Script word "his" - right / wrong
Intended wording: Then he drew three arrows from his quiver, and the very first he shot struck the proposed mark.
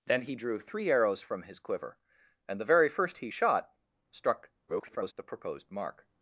right